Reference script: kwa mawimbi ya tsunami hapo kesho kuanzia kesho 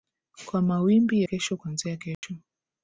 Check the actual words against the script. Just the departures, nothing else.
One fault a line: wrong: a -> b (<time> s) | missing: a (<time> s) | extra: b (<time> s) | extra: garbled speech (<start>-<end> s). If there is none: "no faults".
missing: ya tsunami hapo (1.2 s)